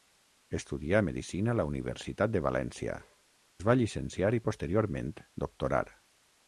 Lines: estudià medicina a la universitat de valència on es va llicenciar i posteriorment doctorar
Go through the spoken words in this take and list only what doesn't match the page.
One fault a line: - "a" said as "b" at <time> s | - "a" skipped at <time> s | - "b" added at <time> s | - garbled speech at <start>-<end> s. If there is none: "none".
- "on" skipped at 3.0 s